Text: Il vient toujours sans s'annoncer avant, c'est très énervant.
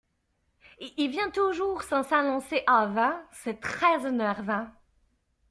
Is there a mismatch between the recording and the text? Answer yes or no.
no